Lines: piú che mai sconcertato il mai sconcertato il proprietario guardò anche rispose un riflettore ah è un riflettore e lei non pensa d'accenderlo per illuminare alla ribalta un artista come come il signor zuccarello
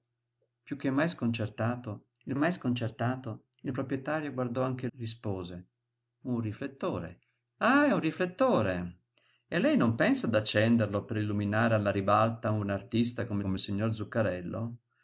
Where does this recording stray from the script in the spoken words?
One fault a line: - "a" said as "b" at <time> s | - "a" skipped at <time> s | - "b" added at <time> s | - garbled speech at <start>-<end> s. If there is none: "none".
none